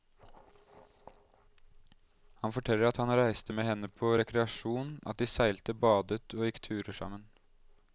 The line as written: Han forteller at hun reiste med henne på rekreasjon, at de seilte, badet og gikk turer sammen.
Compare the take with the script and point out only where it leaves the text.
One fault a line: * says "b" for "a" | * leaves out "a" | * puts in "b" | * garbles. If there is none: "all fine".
* says "han" for "hun"